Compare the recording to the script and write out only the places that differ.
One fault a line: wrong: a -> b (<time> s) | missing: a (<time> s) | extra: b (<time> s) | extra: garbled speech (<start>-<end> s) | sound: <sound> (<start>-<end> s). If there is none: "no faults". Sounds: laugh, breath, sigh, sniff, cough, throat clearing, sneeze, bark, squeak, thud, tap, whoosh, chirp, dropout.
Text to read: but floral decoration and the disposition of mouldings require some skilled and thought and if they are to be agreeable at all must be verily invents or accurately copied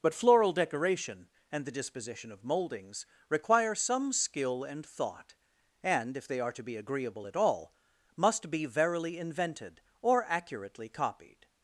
wrong: skilled -> skill (4.1 s)
wrong: invents -> invented (9.2 s)